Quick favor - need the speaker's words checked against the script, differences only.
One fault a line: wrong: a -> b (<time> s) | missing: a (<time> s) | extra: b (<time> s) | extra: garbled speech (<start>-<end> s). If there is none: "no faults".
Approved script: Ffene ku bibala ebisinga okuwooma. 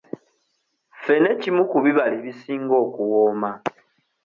extra: kimu (1.4 s)